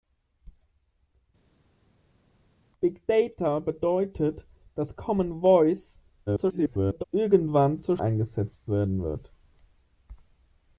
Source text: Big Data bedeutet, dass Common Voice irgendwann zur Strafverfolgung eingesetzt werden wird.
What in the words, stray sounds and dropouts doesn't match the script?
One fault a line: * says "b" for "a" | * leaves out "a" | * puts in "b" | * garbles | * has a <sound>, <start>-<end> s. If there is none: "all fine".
* garbles
* leaves out "Strafverfolgung"